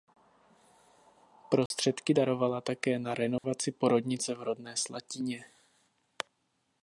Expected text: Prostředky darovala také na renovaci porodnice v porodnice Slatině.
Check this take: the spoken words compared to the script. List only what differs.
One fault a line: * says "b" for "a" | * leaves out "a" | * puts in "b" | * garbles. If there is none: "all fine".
* says "rodné" for "porodnice"